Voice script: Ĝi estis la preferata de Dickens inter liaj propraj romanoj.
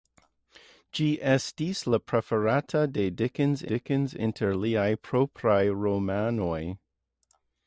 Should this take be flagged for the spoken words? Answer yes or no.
yes